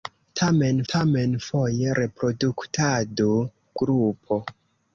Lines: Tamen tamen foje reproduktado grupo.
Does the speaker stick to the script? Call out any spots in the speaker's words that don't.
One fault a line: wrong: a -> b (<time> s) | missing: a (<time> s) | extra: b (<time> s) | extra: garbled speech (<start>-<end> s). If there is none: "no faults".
no faults